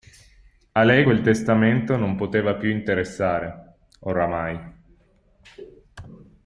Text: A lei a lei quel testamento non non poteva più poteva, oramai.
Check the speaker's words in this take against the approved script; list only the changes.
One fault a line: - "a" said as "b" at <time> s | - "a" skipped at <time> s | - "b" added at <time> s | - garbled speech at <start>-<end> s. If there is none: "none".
- "a lei" skipped at 1.1 s
- "non" skipped at 2.2 s
- "poteva" said as "interessare" at 2.7 s